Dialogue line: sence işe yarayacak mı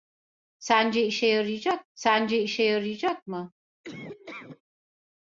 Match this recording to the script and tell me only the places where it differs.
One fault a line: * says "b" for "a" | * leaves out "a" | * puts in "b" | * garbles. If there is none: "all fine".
* puts in "sence işe yarayacak"